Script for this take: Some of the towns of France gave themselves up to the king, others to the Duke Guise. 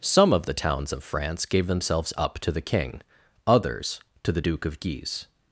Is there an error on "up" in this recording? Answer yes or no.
no